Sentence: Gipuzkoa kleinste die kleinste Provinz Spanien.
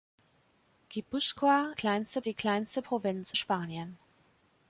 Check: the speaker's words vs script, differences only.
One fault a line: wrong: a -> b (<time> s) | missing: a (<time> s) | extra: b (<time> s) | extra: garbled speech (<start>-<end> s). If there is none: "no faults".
no faults